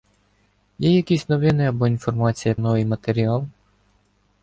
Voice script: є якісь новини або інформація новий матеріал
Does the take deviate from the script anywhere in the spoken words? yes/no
no